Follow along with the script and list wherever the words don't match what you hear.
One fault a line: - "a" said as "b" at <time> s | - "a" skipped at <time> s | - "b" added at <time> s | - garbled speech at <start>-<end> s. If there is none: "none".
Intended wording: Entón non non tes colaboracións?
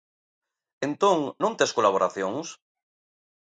- "non" skipped at 1.5 s